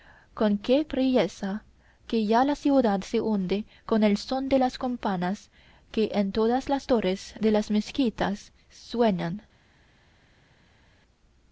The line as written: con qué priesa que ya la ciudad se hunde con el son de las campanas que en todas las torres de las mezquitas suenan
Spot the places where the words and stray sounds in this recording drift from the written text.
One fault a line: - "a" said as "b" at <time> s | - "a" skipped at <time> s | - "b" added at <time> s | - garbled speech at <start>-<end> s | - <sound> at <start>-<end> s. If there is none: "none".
none